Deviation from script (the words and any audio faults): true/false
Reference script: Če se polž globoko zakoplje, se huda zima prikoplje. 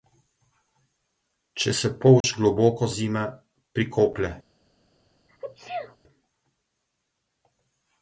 true